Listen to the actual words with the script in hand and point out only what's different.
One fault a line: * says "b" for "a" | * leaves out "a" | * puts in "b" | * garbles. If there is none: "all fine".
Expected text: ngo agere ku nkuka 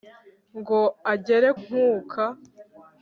* leaves out "ku"